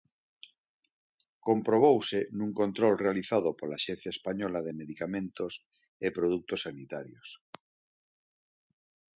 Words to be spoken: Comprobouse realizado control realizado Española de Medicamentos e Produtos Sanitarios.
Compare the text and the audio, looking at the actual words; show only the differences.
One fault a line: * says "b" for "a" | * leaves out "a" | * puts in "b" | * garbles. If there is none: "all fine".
* says "nun" for "realizado"
* puts in "pola Axencia"